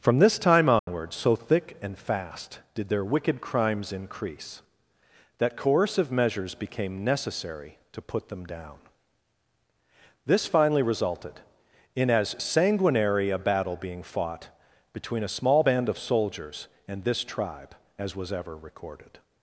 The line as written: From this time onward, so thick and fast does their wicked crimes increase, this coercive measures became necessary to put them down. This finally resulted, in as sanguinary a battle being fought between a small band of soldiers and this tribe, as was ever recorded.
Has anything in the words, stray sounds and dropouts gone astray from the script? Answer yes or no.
yes